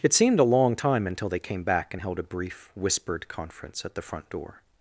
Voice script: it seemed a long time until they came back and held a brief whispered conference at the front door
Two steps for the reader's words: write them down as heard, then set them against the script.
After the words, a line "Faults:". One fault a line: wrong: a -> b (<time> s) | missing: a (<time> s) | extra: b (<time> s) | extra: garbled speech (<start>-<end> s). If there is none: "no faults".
it seemed a long time until they came back and held a brief whispered conference at the front door
Faults:
no faults